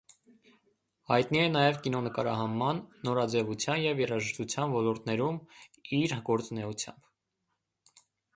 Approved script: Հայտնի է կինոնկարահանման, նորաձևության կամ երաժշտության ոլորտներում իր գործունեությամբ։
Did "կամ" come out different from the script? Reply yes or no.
yes